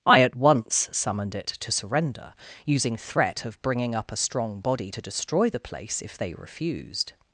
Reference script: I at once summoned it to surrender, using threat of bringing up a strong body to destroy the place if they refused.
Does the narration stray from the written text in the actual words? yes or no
no